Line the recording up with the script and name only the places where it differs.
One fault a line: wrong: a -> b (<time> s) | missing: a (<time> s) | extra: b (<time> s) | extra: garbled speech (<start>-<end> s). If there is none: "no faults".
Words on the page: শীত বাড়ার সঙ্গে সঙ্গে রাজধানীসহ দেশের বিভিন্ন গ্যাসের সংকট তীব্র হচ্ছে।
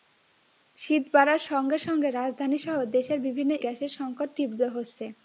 no faults